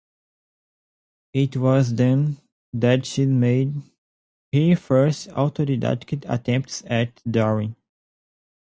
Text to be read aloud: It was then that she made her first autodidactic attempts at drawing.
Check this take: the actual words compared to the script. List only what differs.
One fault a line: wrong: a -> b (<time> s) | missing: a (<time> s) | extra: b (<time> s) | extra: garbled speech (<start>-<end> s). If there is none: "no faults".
no faults